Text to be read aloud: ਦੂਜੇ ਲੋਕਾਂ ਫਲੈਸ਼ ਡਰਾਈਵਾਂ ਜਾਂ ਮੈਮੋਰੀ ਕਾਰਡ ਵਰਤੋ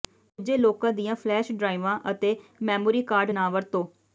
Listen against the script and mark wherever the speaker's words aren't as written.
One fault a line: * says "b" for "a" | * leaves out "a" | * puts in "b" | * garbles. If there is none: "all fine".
* puts in "ਦੀਆਂ"
* says "ਅਤੇ" for "ਜਾਂ"
* puts in "ਨਾ"